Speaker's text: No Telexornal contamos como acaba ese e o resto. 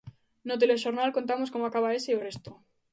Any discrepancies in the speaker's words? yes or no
no